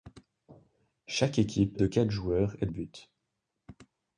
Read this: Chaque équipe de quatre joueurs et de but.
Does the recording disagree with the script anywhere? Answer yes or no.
no